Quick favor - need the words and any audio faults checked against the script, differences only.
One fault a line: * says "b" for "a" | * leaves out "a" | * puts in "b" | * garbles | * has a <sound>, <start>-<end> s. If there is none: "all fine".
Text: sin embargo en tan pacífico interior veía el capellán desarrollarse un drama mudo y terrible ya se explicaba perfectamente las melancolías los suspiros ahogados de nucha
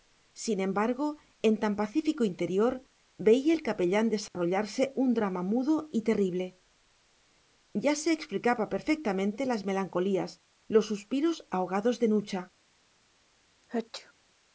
* has a dropout, 4.3-4.3 s
* has a sneeze, 13.6-14.1 s